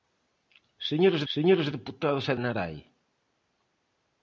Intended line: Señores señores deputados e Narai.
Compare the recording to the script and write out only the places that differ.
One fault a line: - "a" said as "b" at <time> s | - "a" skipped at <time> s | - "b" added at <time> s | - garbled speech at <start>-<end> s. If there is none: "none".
none